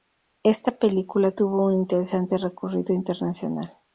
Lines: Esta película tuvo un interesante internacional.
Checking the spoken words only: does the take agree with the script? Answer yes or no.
no